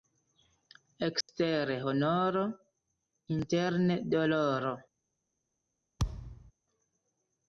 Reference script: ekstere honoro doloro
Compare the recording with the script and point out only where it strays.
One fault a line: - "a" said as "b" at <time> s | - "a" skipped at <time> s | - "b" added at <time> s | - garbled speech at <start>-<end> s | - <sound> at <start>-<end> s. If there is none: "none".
- dropout at 1.2-1.3 s
- "interne" added at 3.4 s
- thud at 6.0-6.5 s